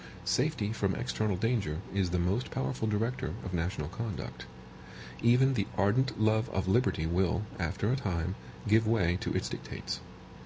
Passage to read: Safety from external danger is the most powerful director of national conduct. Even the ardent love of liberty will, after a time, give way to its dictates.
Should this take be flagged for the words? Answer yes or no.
no